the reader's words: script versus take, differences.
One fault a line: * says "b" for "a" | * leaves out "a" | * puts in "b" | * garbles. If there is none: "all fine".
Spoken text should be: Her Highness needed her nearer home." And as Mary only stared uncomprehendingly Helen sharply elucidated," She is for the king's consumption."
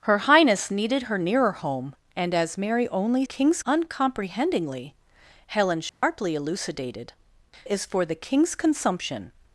* says "king's" for "stared"
* leaves out "She"